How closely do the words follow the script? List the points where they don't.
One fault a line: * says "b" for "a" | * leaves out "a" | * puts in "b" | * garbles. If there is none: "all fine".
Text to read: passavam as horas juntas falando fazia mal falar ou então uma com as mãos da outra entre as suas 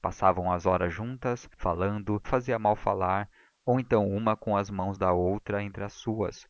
all fine